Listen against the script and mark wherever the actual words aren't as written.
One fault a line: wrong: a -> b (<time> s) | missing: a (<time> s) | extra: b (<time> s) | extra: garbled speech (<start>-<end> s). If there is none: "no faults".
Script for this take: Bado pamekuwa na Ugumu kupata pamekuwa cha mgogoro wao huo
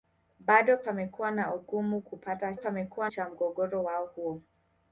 no faults